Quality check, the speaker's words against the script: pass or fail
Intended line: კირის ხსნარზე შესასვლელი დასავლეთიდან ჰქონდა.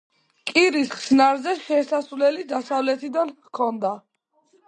pass